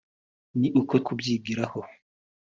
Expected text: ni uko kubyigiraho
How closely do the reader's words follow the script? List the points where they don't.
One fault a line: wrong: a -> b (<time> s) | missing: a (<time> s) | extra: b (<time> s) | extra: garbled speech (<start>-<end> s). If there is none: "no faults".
no faults